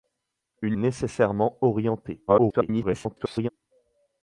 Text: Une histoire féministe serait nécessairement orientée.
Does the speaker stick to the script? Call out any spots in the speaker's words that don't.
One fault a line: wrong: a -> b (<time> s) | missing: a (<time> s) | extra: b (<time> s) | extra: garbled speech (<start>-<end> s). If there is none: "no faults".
missing: histoire féministe serait (0.8 s)
extra: garbled speech (2.3-3.5 s)